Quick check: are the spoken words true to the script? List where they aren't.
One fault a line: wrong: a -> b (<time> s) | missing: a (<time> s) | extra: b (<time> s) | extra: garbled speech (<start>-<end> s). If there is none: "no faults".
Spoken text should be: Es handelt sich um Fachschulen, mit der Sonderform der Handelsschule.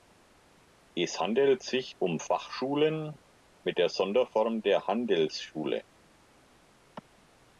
no faults